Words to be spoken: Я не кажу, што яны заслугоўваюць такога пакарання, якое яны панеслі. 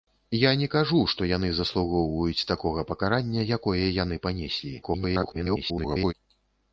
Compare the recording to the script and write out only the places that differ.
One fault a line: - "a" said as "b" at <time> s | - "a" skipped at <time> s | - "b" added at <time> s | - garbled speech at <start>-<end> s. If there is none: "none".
- garbled speech at 4.8-6.1 s